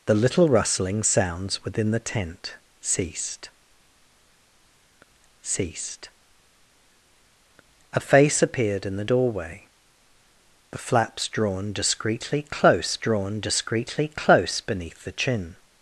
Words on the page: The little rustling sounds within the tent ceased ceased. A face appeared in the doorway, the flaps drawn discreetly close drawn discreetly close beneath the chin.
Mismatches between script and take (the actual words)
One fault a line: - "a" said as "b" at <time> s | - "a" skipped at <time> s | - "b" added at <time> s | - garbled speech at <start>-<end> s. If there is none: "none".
none